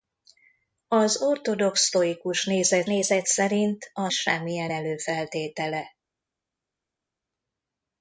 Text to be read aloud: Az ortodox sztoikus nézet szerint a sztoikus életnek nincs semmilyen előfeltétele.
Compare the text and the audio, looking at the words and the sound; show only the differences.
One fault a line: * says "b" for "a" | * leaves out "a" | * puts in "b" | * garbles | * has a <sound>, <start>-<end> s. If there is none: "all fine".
* puts in "nézet"
* leaves out "sztoikus életnek nincs"